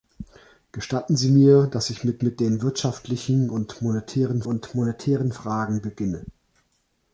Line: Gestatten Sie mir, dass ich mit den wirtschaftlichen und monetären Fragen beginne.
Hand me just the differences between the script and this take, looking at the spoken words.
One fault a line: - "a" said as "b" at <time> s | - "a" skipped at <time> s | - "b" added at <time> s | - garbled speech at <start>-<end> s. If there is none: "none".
- "mit" added at 2.2 s
- "und monetären" added at 4.5 s